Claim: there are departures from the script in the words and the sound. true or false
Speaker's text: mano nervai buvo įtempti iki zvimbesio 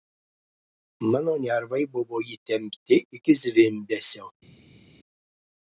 false